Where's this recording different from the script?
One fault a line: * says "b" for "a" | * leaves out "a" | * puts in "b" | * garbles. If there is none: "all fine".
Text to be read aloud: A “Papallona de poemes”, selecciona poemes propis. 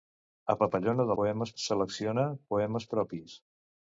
all fine